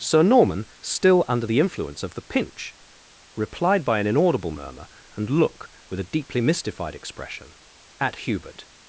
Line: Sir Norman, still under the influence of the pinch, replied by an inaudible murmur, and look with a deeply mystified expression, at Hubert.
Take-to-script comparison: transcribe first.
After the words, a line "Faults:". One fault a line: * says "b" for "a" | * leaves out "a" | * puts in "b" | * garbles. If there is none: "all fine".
Sir Norman, still under the influence of the pinch, replied by an inaudible murmur, and look with a deeply mystified expression, at Hubert.
Faults:
all fine